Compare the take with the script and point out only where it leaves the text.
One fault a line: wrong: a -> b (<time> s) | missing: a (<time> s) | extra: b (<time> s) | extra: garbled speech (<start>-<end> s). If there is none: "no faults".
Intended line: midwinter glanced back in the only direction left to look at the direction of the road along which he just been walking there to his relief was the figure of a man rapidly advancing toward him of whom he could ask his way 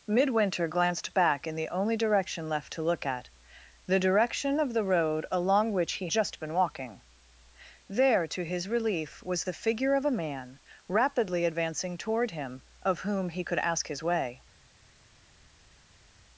no faults